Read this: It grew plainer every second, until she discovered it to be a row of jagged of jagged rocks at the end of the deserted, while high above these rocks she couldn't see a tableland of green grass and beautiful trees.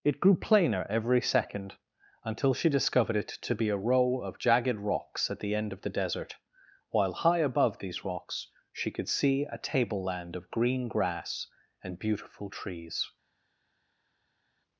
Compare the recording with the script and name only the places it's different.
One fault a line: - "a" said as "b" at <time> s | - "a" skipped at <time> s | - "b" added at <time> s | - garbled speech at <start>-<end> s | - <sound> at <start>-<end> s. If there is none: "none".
- "of jagged" skipped at 4.8 s
- "deserted" said as "desert" at 5.9 s
- "couldn't" said as "could" at 8.9 s